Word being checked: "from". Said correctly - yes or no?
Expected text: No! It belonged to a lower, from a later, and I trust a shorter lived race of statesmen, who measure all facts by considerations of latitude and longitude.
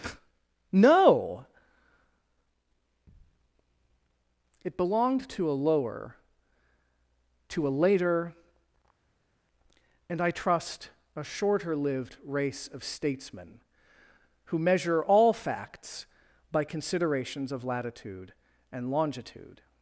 no